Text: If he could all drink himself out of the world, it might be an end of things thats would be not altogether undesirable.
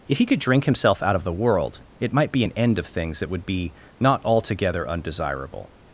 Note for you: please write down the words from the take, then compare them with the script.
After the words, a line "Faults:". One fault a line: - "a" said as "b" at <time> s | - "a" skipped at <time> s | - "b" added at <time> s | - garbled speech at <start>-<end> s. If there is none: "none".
If he could drink himself out of the world, it might be an end of things that would be not altogether undesirable.
Faults:
- "all" skipped at 0.4 s
- "thats" said as "that" at 3.2 s